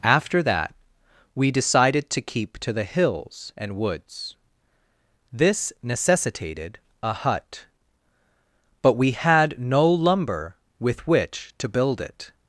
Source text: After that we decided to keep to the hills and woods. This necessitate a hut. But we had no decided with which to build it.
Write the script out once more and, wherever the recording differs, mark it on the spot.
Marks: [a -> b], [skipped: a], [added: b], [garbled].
After that we decided to keep to the hills and woods. This [necessitate -> necessitated] a hut. But we had no [decided -> lumber] with which to build it.